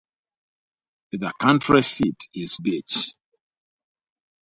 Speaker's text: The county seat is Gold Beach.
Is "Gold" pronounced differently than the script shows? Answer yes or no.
yes